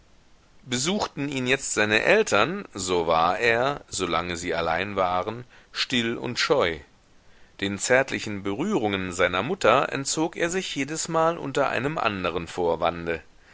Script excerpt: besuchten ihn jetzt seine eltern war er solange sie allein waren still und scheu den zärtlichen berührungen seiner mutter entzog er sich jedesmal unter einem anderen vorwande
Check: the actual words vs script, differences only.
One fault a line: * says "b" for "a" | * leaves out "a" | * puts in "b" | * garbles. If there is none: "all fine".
* puts in "so"